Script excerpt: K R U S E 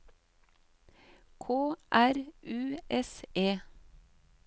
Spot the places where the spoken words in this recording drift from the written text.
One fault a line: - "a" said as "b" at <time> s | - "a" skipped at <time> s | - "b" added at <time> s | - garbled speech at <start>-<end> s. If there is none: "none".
none